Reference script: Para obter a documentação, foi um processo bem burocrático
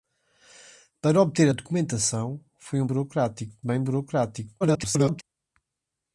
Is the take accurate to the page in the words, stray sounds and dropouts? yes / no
no